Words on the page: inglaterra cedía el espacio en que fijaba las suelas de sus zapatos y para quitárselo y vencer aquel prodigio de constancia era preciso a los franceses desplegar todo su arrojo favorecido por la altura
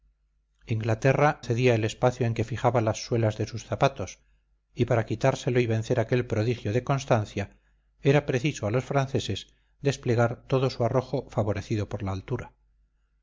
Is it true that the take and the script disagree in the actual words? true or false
false